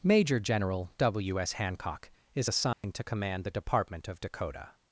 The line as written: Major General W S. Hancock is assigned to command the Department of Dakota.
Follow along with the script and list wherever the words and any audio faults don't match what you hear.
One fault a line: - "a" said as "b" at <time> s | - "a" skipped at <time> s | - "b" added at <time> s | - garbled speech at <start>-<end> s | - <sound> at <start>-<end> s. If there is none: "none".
- dropout at 2.7-2.8 s